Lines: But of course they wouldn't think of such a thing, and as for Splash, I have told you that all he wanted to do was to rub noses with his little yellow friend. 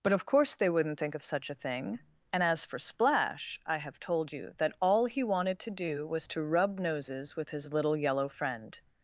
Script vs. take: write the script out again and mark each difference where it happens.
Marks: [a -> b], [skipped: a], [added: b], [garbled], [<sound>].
But of course they wouldn't think of such a thing, and as for Splash, I have told you that all he wanted to do was to rub noses with his little yellow friend.